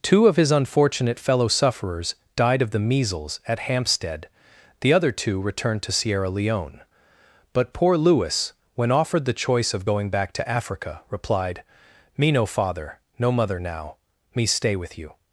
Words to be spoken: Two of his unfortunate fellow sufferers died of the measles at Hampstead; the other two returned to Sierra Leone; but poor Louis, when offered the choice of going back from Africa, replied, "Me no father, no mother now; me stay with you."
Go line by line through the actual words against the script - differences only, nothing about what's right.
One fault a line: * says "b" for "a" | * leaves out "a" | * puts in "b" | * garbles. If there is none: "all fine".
* says "to" for "from"